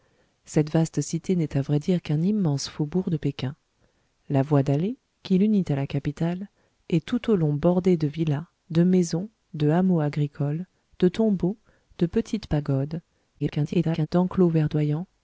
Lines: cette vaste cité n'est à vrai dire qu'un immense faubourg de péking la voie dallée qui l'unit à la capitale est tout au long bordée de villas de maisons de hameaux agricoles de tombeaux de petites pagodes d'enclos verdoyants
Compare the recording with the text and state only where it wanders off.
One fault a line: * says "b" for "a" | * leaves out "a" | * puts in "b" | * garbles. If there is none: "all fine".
* garbles